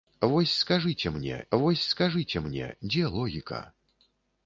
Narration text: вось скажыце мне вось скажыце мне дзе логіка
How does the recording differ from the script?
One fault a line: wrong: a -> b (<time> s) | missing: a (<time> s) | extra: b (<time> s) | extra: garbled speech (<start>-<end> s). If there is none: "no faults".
no faults